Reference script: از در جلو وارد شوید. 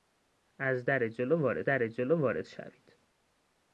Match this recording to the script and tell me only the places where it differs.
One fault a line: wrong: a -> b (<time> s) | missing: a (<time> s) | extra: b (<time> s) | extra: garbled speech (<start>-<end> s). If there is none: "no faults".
extra: در جلو وارد (1.6 s)